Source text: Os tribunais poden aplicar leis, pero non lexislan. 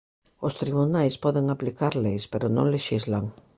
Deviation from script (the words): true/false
false